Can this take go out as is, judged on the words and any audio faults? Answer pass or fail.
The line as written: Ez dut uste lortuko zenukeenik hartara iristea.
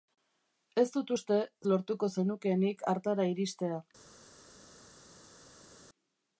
pass